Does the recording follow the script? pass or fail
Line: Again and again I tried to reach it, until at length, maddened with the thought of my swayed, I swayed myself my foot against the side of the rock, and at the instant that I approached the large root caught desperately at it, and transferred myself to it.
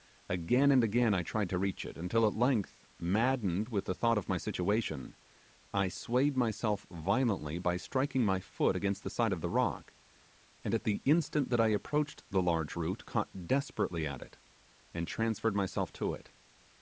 fail